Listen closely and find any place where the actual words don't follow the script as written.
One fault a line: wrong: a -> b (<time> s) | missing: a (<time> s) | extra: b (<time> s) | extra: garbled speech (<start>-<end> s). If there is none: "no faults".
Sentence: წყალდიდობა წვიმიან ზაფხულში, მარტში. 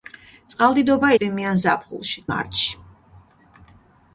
no faults